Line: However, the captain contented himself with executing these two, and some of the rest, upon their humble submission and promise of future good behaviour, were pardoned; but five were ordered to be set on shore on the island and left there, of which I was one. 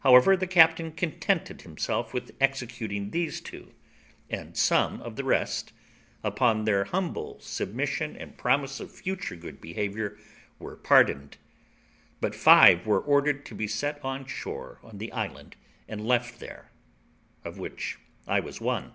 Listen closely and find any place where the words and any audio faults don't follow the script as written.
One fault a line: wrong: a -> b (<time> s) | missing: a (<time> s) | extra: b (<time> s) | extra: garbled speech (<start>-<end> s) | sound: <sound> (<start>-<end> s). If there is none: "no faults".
no faults